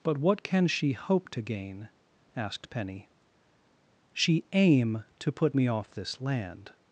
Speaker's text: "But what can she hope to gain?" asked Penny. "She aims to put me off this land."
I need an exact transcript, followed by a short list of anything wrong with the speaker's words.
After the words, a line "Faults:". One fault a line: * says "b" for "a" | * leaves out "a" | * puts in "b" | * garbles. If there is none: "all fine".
"But what can she hope to gain?" asked Penny. "She aim to put me off this land."
Faults:
* says "aim" for "aims"